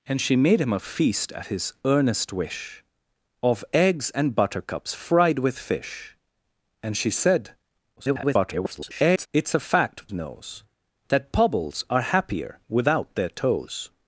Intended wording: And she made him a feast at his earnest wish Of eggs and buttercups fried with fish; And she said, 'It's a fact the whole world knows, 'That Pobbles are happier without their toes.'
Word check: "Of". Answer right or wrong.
right